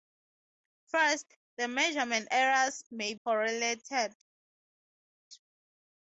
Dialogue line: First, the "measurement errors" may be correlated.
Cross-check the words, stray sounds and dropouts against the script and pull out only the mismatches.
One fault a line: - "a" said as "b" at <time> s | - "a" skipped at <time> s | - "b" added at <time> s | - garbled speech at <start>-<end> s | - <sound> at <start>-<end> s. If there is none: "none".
- "be" skipped at 3.1 s